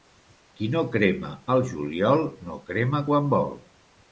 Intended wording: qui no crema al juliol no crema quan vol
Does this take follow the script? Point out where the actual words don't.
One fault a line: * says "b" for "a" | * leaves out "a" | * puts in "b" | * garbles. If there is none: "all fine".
all fine